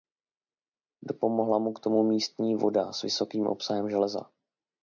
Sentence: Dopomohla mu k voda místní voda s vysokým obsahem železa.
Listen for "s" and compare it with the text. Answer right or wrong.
right